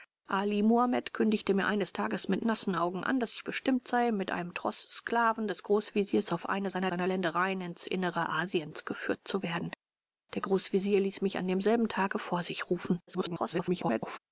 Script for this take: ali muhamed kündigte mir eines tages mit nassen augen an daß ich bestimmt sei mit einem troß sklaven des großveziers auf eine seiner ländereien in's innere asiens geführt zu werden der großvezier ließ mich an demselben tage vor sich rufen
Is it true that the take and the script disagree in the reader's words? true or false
true